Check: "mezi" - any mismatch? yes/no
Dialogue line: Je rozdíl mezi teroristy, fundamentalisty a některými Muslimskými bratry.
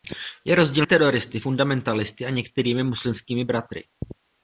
yes